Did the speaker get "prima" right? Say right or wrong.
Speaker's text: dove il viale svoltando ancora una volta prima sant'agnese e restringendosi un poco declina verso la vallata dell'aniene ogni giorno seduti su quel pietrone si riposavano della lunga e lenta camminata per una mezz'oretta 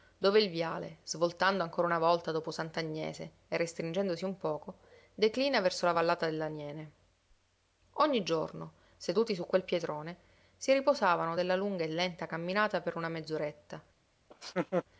wrong